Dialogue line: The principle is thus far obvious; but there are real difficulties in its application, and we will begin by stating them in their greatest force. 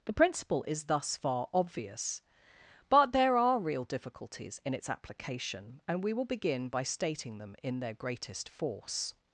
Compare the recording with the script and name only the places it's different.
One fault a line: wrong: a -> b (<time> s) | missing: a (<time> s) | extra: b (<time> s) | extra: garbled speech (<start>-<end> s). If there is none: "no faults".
no faults